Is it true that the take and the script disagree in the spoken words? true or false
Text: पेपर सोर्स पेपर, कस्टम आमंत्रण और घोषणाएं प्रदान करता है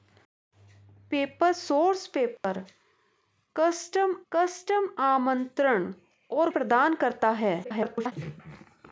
true